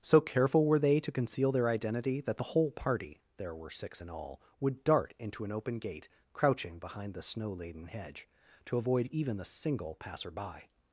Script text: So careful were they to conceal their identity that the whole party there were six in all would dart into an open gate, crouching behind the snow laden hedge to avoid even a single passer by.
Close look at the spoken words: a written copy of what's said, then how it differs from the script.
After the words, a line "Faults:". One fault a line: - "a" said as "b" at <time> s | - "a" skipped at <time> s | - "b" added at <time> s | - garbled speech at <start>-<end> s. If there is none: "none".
So careful were they to conceal their identity that the whole party there were six in all would dart into an open gate, crouching behind the snow laden hedge to avoid even a single passer by.
Faults:
none